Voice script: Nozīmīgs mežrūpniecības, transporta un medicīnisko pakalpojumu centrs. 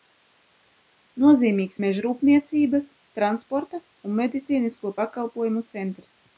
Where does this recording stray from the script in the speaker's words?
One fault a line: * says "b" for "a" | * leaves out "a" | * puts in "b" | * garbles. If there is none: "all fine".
all fine